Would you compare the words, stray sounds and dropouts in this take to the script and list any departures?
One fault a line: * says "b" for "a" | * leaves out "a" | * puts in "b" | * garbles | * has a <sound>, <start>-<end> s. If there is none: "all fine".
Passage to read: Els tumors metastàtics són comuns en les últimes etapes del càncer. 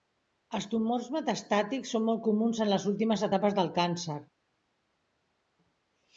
* puts in "molt"